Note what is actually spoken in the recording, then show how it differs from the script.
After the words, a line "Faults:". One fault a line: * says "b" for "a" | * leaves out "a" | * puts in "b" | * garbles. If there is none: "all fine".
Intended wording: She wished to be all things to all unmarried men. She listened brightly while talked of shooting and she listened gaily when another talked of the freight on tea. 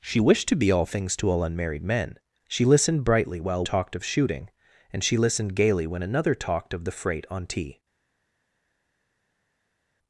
She wished to be all things to all unmarried men. She listened brightly while talked of shooting and she listened gaily when another talked of the freight on tea.
Faults:
all fine